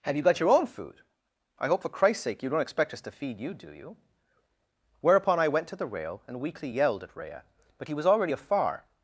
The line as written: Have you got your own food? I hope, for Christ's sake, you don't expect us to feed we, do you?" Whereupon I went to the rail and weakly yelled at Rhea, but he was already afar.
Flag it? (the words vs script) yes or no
yes